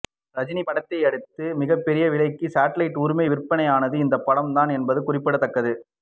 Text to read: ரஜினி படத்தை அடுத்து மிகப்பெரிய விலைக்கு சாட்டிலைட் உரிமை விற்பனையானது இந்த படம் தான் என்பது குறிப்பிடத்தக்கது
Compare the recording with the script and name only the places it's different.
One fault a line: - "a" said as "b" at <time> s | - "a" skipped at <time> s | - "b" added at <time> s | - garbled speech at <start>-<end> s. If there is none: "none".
none